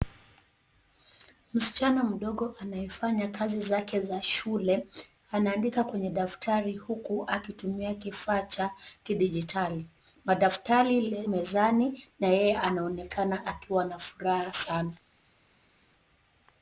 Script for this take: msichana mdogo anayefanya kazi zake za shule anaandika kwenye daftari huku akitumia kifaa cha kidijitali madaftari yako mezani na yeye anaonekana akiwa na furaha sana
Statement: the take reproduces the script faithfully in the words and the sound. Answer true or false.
false